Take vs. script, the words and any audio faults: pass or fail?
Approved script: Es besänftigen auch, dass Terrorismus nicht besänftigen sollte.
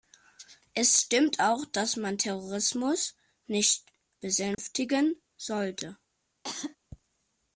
fail